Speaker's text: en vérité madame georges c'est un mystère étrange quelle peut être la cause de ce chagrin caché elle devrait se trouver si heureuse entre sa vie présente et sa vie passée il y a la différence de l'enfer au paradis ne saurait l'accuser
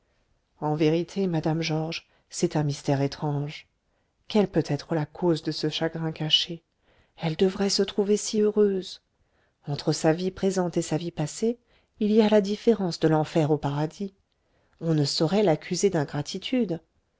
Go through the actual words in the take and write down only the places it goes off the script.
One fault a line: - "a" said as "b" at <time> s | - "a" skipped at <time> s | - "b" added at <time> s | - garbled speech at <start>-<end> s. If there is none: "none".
- "on" added at 14.8 s